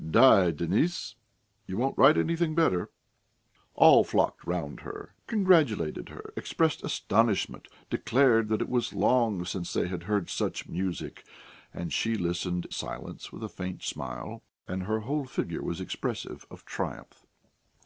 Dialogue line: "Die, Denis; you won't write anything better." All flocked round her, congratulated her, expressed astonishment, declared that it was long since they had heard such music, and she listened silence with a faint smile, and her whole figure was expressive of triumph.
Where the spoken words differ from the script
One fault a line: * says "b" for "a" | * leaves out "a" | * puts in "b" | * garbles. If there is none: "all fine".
all fine